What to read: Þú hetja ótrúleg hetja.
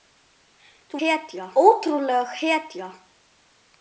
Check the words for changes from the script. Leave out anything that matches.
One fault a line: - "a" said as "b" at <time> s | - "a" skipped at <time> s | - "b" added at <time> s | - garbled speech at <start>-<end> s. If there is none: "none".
none